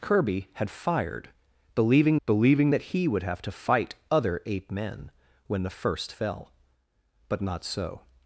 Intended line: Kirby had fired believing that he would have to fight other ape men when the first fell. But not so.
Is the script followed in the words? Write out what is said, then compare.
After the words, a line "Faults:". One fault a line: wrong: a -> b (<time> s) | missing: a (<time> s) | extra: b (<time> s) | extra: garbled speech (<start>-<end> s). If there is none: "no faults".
Kirby had fired believing believing that he would have to fight other ape men when the first fell. But not so.
Faults:
extra: believing (2.3 s)